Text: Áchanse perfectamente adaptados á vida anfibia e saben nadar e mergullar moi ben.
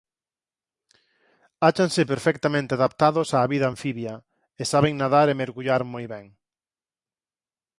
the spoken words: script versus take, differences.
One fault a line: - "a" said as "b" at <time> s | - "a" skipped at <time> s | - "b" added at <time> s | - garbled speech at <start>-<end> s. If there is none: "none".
none